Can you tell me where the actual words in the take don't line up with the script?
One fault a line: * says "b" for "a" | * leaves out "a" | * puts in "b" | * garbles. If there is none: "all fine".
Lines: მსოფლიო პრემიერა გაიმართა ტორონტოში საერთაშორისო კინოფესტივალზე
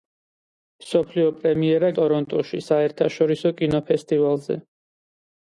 * leaves out "გაიმართა"